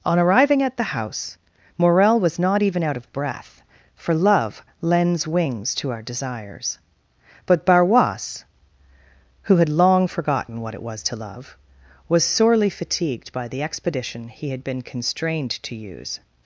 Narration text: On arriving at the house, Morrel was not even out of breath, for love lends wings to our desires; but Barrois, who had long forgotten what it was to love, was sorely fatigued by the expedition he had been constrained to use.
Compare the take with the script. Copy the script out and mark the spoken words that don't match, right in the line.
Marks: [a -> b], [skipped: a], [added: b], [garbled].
On arriving at the house, Morrel was not even out of breath, for love lends wings to our desires; but Barrois, who had long forgotten what it was to love, was sorely fatigued by the expedition he had been constrained to use.